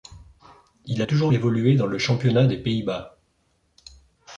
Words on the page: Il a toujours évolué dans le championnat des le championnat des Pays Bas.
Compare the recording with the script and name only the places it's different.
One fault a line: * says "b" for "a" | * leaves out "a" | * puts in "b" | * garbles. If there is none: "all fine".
* leaves out "le championnat des"